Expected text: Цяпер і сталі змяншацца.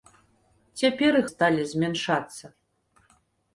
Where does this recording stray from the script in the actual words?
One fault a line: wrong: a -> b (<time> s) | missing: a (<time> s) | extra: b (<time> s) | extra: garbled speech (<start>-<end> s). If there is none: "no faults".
no faults